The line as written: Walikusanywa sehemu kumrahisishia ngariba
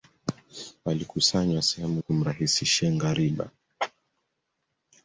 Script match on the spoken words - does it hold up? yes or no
yes